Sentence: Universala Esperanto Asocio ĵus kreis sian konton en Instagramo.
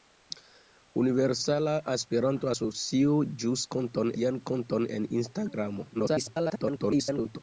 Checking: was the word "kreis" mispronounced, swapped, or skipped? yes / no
yes